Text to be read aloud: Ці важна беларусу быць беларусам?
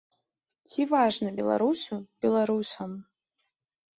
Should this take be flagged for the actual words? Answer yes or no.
yes